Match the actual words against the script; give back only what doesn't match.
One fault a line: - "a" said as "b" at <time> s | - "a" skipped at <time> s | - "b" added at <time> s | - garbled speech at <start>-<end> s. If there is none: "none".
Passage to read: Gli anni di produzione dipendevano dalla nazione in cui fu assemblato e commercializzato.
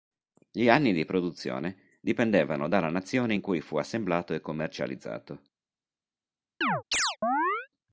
none